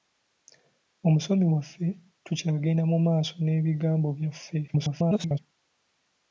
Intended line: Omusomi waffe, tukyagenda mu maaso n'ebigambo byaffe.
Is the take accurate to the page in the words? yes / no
no